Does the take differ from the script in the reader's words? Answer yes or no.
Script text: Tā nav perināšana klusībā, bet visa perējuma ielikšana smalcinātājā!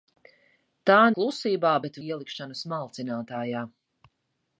yes